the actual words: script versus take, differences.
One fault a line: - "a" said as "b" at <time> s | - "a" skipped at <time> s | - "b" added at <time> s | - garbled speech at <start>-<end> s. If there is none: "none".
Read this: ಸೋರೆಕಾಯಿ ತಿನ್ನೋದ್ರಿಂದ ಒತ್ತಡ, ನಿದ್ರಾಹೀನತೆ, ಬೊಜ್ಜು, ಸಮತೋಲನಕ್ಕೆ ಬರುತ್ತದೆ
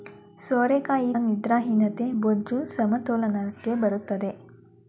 - "ತಿನ್ನೋದ್ರಿಂದ ಒತ್ತಡ" skipped at 1.1 s